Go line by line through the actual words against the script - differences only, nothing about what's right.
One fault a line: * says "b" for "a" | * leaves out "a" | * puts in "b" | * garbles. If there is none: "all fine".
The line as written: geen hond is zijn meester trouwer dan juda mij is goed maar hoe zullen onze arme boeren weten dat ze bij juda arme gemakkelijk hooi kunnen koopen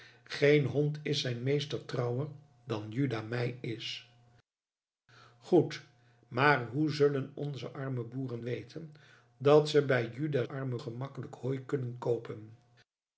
all fine